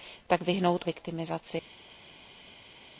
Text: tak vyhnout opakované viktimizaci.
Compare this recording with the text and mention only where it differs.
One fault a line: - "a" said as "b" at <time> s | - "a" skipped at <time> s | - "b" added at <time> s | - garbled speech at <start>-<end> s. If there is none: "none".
- "opakované" skipped at 0.8 s